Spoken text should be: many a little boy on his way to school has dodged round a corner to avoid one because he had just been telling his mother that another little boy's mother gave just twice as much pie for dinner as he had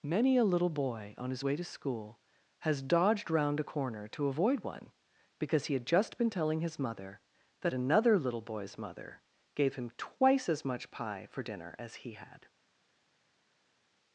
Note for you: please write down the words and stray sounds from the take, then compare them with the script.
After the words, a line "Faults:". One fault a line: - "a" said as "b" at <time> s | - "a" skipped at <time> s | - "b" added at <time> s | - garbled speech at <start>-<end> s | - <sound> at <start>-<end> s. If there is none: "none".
many a little boy on his way to school has dodged round a corner to avoid one because he had just been telling his mother that another little boy's mother gave him twice as much pie for dinner as he had
Faults:
- "just" said as "him" at 9.7 s